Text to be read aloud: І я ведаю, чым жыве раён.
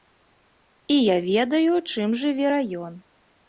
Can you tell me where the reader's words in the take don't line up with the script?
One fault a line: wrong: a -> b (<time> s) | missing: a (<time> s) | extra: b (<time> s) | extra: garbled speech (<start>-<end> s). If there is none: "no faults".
no faults